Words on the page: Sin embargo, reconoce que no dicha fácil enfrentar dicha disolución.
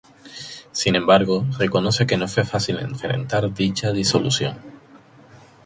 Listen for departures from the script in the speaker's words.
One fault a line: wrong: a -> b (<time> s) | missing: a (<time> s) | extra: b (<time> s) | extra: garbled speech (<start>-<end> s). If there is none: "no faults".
wrong: dicha -> fue (2.3 s)